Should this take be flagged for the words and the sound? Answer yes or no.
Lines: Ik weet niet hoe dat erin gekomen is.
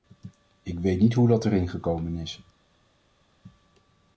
no